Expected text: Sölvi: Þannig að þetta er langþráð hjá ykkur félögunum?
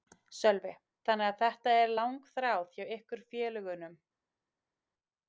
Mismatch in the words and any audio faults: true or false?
false